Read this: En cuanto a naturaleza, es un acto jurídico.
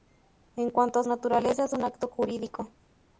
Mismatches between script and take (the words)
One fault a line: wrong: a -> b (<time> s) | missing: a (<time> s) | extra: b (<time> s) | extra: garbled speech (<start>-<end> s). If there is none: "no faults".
no faults